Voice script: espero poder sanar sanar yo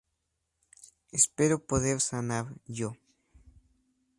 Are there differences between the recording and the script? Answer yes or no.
yes